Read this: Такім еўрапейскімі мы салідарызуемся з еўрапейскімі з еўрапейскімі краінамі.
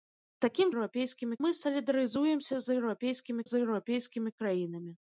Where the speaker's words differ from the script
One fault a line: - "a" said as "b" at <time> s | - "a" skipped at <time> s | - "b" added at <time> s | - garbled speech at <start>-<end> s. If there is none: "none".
none